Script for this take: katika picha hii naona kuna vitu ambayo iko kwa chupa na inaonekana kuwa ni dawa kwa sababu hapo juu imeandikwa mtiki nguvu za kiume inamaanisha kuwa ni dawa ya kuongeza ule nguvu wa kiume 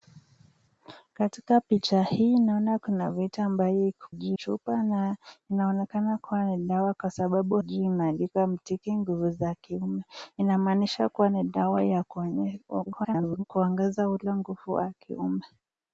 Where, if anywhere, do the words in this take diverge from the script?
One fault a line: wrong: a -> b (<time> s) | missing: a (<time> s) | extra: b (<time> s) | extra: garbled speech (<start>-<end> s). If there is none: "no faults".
wrong: kwa -> juu (4.1 s)
missing: hapo (7.6 s)
extra: garbled speech (12.9-13.4 s)